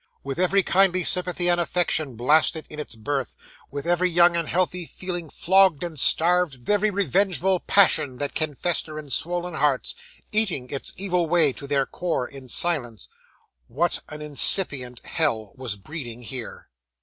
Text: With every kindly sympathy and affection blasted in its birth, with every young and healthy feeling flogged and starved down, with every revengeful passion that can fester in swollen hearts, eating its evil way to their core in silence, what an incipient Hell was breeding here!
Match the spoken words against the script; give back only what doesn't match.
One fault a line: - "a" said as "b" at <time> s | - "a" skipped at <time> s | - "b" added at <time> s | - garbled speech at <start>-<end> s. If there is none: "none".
- "down with" skipped at 6.6 s